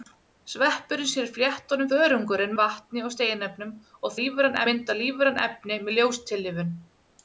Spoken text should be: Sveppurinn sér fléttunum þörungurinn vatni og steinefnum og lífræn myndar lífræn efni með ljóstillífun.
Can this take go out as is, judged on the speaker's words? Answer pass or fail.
pass